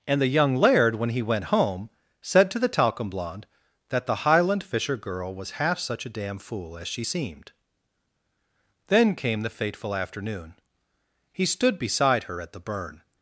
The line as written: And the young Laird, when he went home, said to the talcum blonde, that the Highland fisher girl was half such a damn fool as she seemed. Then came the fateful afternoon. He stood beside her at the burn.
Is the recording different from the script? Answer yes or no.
no